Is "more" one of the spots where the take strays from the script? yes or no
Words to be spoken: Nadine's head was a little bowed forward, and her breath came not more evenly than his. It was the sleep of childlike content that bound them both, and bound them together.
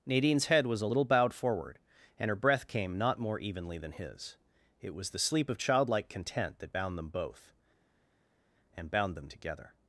no